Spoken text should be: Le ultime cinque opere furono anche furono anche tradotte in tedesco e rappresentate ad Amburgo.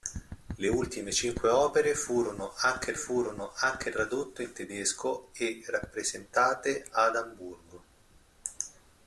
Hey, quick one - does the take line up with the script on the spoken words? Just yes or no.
yes